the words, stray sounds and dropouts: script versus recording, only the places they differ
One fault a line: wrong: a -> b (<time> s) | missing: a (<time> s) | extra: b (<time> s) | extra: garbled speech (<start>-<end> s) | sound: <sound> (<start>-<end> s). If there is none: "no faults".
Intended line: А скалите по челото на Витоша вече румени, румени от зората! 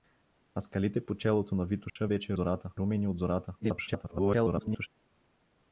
sound: dropout (1.9-2.0 s)
wrong: румени -> зората (2.3 s)
extra: garbled speech (3.6-4.9 s)